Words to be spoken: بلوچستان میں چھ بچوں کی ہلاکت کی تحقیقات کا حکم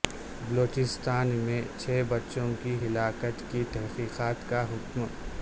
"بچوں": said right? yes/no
yes